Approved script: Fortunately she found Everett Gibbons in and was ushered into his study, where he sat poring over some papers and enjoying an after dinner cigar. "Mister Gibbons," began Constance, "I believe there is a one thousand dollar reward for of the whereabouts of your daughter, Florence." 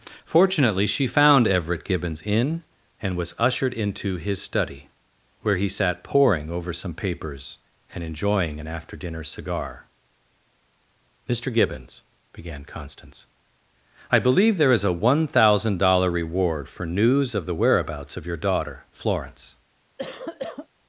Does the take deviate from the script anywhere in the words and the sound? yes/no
yes